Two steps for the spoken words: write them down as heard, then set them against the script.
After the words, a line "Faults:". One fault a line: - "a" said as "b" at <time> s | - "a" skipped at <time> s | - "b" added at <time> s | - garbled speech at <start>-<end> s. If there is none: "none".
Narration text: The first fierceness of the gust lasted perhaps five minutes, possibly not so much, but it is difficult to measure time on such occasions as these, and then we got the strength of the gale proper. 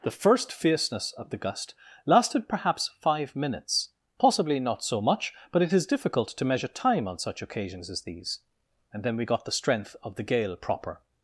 The first fierceness of the gust lasted perhaps five minutes, possibly not so much, but it is difficult to measure time on such occasions as these, and then we got the strength of the gale proper.
Faults:
none